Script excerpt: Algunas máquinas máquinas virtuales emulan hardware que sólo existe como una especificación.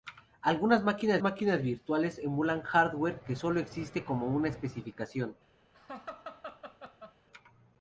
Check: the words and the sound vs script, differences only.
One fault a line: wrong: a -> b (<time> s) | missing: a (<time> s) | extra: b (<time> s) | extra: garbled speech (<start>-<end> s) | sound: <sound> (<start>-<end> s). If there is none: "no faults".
sound: laugh (5.7-7.2 s)